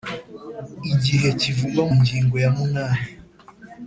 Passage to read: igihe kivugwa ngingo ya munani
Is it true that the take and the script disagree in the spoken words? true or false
false